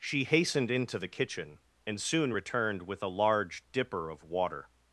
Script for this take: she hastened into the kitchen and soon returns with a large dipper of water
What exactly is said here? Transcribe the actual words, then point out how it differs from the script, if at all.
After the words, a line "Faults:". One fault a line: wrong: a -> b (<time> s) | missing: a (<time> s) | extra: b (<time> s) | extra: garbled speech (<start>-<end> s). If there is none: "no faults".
she hastened into the kitchen and soon returned with a large dipper of water
Faults:
wrong: returns -> returned (2.3 s)